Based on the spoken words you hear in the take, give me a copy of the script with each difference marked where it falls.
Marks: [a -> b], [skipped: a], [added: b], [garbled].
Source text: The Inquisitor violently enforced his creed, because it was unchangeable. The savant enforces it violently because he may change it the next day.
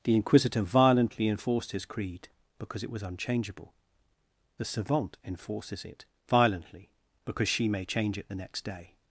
The Inquisitor violently enforced his creed, because it was unchangeable. The savant enforces it violently because [he -> she] may change it the next day.